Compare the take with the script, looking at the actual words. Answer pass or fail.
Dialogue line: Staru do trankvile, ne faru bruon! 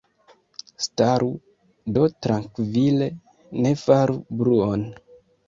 pass